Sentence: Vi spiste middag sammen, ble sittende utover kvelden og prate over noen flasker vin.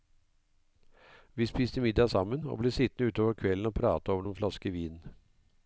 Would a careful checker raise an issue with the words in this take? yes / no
yes